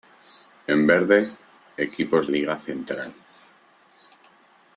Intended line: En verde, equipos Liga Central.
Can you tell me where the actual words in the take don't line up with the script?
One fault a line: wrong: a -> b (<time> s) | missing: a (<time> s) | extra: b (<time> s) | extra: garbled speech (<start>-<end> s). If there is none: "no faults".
no faults